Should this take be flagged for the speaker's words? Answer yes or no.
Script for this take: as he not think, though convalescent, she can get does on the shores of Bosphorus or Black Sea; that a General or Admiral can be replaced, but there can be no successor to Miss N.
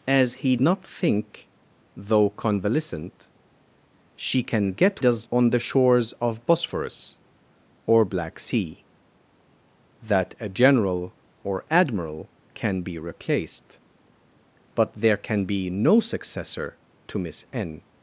no